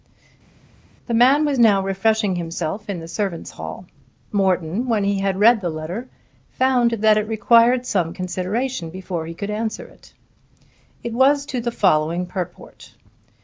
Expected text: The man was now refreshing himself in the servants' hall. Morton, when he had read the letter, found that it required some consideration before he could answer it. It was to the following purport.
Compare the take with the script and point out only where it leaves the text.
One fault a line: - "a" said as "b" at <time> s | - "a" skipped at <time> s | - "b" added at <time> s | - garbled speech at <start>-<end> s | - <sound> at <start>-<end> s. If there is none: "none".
none